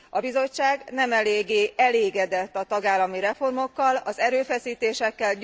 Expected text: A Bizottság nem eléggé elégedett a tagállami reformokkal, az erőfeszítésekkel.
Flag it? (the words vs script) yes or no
no